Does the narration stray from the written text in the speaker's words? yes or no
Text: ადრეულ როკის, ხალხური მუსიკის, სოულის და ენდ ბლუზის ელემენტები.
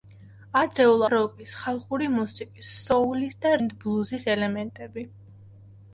no